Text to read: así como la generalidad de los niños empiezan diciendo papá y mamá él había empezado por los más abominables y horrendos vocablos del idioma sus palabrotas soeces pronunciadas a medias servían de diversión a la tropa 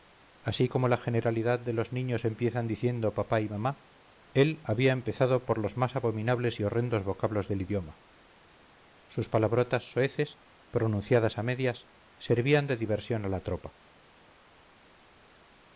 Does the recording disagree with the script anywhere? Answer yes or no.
no